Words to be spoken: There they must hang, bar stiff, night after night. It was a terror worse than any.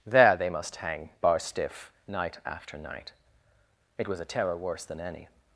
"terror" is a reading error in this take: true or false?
false